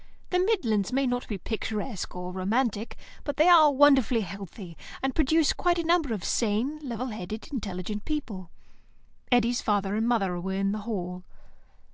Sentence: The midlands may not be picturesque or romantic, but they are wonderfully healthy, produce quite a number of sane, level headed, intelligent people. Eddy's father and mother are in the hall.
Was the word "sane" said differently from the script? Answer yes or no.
no